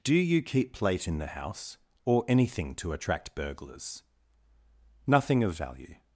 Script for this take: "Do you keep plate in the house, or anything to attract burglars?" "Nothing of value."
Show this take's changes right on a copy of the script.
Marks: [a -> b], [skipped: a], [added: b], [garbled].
"Do you keep plate in the house, or anything to attract burglars?" "Nothing of value."